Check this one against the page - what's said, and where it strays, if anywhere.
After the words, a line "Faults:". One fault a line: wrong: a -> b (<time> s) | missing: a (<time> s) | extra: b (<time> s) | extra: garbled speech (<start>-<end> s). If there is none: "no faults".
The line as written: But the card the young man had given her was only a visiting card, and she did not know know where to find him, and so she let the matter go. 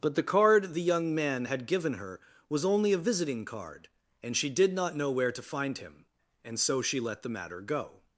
But the card the young man had given her was only a visiting card, and she did not know where to find him, and so she let the matter go.
Faults:
missing: know (5.1 s)